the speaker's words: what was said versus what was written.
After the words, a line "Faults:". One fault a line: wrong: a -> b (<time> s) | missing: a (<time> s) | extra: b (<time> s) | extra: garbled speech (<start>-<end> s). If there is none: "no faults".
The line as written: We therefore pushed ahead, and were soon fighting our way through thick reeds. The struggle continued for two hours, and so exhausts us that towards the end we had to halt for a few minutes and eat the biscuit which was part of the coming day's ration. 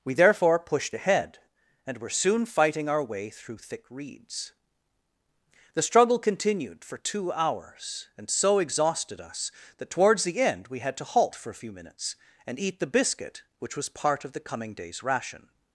We therefore pushed ahead, and were soon fighting our way through thick reeds. The struggle continued for two hours, and so exhausted us that towards the end we had to halt for a few minutes and eat the biscuit which was part of the coming day's ration.
Faults:
wrong: exhausts -> exhausted (8.6 s)